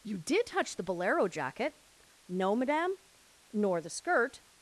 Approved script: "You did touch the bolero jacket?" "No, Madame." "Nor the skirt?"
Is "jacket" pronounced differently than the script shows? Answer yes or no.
no